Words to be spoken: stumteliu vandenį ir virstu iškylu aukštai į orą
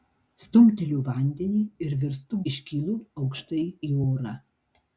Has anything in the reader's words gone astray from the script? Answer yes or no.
no